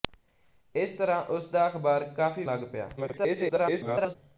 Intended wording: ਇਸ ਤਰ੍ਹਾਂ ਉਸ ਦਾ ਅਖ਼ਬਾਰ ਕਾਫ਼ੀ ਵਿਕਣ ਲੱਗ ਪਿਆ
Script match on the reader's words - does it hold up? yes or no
no